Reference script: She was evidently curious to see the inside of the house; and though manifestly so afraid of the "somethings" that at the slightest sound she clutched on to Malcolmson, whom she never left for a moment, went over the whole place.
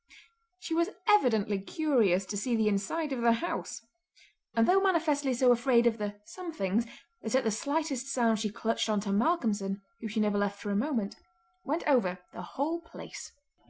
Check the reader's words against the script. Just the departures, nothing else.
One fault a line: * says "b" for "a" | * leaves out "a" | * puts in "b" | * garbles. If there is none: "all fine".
all fine